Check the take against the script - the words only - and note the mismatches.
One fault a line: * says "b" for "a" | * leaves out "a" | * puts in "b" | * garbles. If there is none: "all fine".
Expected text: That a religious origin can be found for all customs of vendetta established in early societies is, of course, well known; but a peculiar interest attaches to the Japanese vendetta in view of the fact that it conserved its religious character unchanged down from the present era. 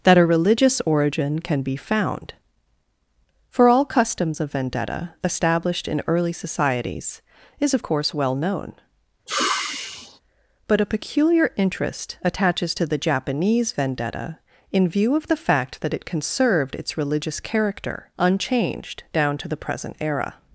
* says "to" for "from"